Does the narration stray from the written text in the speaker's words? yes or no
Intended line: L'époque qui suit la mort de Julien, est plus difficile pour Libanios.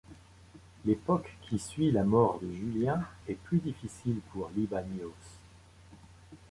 no